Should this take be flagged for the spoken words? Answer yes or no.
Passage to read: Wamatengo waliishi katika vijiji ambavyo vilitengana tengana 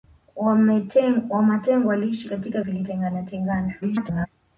yes